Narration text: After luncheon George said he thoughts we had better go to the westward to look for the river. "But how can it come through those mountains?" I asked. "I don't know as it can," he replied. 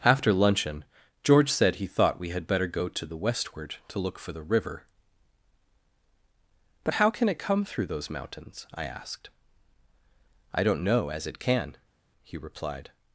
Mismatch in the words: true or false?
true